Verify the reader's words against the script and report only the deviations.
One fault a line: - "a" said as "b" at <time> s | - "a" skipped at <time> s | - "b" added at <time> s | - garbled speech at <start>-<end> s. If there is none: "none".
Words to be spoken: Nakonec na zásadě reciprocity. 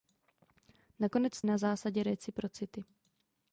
none